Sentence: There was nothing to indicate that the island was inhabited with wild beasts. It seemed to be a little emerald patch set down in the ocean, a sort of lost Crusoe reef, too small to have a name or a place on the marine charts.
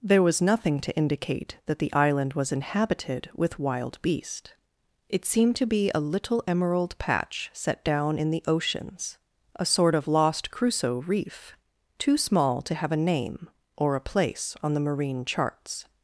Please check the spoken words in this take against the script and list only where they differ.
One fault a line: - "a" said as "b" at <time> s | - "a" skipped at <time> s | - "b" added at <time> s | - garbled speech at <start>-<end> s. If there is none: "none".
- "beasts" said as "beast" at 4.0 s
- "ocean" said as "oceans" at 8.5 s